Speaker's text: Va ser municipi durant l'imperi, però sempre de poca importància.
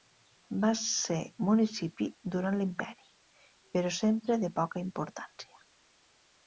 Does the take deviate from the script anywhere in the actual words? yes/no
no